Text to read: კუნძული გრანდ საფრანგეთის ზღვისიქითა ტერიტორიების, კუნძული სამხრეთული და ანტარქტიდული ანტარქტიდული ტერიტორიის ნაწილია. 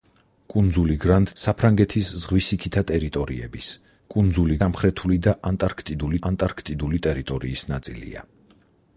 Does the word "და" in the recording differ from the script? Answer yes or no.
no